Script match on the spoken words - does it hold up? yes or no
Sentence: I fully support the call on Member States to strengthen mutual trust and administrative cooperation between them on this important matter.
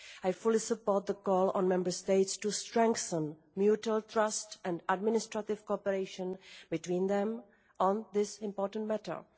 yes